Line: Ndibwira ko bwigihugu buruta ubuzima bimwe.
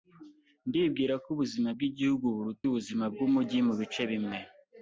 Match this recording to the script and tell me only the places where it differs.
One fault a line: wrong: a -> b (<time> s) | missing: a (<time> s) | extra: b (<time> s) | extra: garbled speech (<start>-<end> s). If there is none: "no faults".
extra: ubuzima (1.4 s)
extra: bwumujyi mubice (3.1 s)